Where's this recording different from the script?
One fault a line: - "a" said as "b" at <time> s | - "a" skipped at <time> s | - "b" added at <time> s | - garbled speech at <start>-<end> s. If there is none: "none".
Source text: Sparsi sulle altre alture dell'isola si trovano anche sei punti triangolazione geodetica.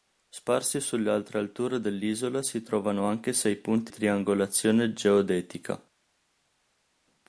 none